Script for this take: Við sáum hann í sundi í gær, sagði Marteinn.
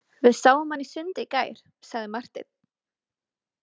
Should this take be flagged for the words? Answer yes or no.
no